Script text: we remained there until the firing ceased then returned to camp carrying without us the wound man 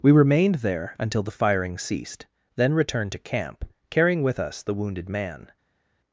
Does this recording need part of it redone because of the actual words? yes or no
yes